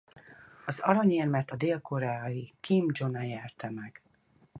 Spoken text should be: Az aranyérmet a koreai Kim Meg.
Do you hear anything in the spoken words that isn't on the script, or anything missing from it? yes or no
yes